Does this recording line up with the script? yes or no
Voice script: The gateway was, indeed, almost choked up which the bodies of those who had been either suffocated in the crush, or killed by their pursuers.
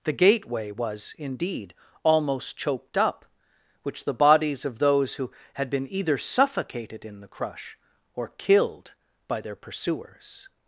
yes